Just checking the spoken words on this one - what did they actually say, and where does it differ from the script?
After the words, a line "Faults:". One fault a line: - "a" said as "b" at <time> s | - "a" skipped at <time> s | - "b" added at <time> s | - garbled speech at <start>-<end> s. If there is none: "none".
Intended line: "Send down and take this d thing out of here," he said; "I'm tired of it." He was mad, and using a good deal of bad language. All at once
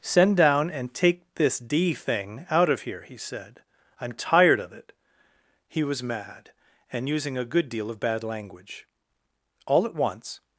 "Send down and take this d thing out of here," he said; "I'm tired of it." He was mad, and using a good deal of bad language. All at once
Faults:
none